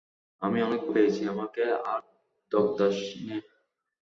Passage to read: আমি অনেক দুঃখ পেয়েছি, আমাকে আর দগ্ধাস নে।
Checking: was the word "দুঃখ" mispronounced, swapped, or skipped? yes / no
yes